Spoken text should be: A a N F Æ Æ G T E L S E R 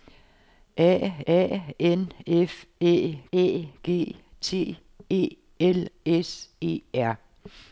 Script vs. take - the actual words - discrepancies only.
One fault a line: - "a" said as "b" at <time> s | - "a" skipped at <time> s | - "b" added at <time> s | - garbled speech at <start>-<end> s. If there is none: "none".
none